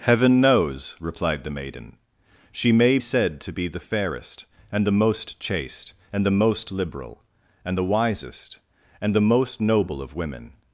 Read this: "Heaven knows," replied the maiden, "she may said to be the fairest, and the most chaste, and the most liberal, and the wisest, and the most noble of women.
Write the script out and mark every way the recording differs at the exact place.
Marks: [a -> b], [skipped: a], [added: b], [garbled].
"Heaven knows," replied the maiden, "she may said to be the fairest, and the most chaste, and the most liberal, and the wisest, and the most noble of women.